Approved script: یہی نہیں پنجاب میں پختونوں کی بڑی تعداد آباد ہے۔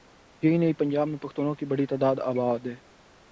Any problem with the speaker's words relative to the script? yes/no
no